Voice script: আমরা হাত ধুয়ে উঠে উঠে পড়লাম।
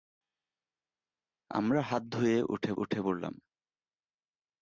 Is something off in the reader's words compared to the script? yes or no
no